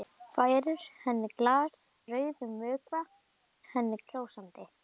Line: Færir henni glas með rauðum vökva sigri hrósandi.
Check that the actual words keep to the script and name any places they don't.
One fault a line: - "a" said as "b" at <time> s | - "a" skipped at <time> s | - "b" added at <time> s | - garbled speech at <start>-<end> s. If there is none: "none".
- "með" skipped at 1.8 s
- "sigri" said as "henni" at 3.7 s